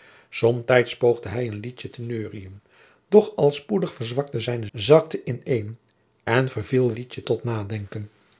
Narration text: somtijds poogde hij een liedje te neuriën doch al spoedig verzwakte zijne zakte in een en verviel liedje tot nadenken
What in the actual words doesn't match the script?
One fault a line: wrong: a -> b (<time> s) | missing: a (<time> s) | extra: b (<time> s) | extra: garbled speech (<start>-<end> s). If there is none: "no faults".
no faults